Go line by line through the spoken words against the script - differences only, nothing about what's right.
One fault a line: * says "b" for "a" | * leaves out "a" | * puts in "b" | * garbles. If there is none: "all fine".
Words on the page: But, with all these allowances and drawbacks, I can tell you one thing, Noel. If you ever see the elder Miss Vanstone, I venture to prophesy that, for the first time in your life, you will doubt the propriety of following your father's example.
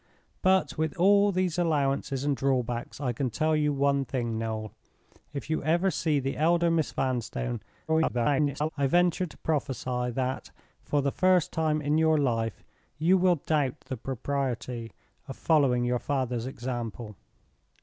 * garbles